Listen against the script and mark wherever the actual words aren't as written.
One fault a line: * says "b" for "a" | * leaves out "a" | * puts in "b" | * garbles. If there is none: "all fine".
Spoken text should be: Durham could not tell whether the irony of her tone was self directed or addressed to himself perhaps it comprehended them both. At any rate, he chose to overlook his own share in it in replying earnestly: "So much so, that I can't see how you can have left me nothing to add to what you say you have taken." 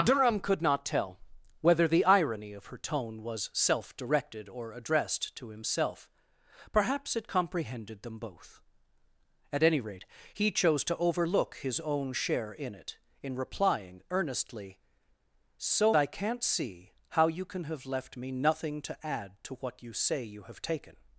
* leaves out "much so that"